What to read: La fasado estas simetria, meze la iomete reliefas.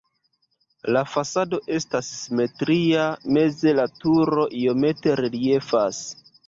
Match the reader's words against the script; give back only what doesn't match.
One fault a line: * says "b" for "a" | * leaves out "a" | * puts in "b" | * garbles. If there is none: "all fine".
* puts in "turo"